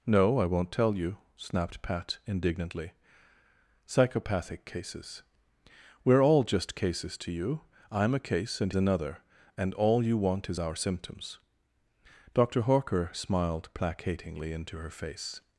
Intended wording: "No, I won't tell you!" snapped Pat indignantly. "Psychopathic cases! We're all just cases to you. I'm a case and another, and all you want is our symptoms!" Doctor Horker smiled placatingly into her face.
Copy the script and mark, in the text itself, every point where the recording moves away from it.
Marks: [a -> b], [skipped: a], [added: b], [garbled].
"No, I won't tell you!" snapped Pat indignantly. "Psychopathic cases! We're all just cases to you. I'm a case and another, and all you want is our symptoms!" Doctor Horker smiled placatingly into her face.